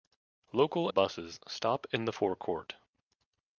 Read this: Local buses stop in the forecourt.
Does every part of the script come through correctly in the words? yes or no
yes